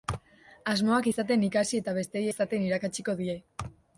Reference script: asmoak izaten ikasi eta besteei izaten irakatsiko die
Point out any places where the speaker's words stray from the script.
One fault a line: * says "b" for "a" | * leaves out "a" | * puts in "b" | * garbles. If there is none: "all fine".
all fine